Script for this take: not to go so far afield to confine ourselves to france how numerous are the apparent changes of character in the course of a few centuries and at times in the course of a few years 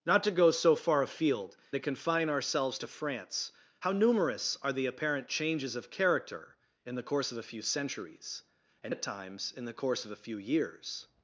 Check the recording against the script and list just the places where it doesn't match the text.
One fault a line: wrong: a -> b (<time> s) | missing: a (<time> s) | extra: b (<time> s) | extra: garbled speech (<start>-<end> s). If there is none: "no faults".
no faults